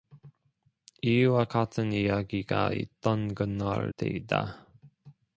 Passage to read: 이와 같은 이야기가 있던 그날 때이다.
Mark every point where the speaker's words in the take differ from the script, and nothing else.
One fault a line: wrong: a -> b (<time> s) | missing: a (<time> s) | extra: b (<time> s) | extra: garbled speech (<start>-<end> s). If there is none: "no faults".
no faults